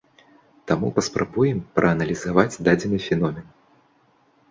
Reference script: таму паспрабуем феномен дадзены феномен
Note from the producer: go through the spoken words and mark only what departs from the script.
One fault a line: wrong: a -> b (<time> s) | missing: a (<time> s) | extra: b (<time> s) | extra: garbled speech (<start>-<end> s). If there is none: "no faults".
wrong: феномен -> прааналізаваць (1.8 s)